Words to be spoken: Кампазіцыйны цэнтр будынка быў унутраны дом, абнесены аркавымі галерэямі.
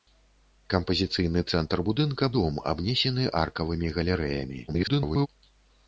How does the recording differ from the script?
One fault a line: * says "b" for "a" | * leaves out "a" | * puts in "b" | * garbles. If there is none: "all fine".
* leaves out "быў унутраны"
* garbles